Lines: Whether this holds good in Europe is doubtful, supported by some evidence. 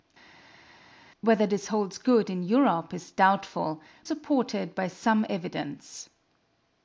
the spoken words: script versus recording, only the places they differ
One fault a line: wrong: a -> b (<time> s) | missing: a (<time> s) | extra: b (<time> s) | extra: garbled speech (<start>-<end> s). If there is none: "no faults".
no faults